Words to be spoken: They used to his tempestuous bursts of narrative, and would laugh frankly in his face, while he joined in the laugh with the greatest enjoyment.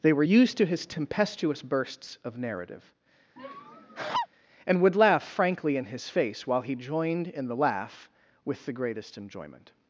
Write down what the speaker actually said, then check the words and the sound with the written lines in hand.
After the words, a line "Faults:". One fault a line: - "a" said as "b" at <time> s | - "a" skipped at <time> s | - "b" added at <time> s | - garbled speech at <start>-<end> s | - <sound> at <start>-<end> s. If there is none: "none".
They were used to his tempestuous bursts of narrative, and would laugh frankly in his face, while he joined in the laugh with the greatest enjoyment.
Faults:
- "were" added at 0.1 s
- laugh at 3.4-4.3 s